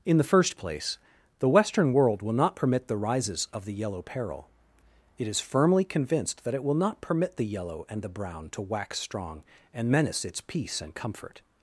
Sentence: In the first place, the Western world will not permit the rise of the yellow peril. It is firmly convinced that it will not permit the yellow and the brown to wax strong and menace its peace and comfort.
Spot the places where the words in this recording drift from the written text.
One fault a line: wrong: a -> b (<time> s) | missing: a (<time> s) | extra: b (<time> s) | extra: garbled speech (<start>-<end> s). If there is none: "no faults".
wrong: rise -> rises (3.0 s)